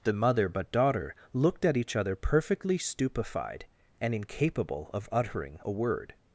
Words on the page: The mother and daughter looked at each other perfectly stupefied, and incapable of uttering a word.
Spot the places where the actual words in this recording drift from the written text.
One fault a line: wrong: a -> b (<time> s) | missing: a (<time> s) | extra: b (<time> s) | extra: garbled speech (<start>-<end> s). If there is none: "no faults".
wrong: and -> but (0.5 s)